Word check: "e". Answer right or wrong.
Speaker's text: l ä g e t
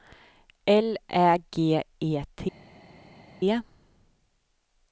right